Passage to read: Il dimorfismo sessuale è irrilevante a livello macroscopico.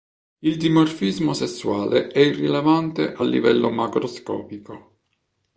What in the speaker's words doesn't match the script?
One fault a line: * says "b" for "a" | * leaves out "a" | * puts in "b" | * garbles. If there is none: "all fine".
all fine